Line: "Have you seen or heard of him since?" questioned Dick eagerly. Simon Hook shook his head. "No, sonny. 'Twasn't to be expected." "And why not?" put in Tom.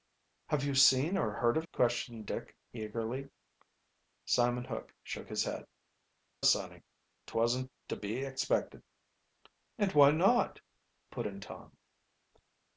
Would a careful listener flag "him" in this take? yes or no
yes